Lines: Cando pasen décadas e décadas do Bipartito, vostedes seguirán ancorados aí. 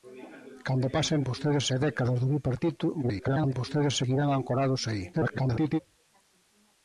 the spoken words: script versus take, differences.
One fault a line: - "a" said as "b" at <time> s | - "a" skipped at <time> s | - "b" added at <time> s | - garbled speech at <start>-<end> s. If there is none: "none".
- "décadas" said as "vostedes" at 1.3 s
- garbled speech at 3.0-3.5 s
- garbled speech at 5.1-5.8 s